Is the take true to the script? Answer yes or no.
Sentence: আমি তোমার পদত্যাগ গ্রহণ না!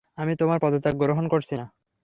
no